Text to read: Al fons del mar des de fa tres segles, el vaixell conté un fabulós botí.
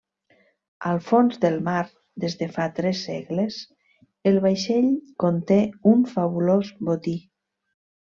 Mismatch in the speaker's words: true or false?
false